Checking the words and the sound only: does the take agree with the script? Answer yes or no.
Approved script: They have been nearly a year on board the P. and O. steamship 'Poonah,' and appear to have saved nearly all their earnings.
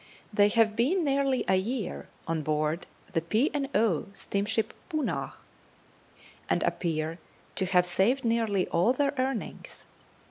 yes